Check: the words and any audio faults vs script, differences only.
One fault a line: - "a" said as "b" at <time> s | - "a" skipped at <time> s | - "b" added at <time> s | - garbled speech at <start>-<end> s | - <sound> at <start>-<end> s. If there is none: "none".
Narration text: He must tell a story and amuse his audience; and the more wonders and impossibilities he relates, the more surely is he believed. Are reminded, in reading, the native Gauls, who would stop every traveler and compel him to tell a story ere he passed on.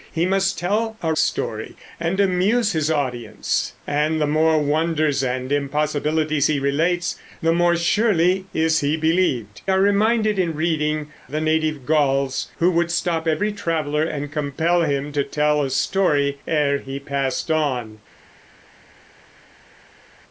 none